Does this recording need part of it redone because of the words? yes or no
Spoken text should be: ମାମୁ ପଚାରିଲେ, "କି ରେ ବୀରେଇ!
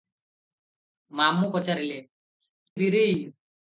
yes